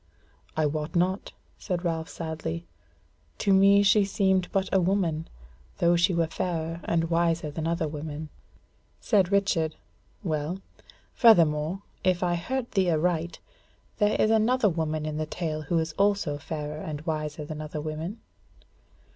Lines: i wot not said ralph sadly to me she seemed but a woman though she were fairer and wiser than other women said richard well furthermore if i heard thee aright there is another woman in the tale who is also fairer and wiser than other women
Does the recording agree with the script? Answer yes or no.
yes